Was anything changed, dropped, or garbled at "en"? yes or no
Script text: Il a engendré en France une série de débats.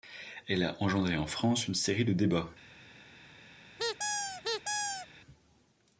no